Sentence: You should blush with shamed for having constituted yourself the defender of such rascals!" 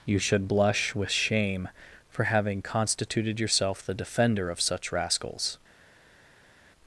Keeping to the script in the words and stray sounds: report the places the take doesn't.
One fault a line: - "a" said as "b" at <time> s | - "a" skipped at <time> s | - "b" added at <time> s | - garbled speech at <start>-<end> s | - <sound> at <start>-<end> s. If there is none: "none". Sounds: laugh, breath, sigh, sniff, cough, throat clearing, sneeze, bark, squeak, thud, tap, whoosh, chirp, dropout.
- "shamed" said as "shame" at 1.1 s